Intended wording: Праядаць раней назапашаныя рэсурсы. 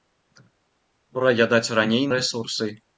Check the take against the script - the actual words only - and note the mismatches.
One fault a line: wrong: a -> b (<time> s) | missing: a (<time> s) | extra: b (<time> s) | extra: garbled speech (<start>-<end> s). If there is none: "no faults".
missing: назапашаныя (2.1 s)